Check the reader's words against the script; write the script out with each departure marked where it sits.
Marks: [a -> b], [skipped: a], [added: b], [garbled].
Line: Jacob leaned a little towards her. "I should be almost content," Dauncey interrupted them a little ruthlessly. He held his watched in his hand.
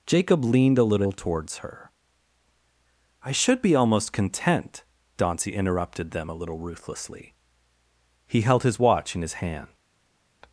Jacob leaned a little towards her. "I should be almost content," Dauncey interrupted them a little ruthlessly. He held his [watched -> watch] in his hand.